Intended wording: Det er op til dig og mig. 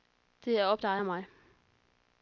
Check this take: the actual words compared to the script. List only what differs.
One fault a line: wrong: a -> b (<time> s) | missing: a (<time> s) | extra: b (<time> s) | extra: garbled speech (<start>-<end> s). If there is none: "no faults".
missing: til (0.8 s)